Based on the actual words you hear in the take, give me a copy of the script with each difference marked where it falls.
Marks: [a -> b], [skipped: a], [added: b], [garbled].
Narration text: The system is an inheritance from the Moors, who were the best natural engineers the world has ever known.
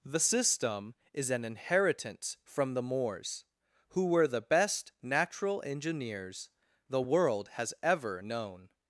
The system is an inheritance from the Moors, who were the best natural engineers the world has ever known.